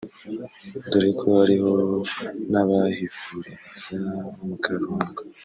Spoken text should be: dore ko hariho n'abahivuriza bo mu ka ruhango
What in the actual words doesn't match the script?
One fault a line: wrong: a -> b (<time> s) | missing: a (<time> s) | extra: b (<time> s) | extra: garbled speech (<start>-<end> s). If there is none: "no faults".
no faults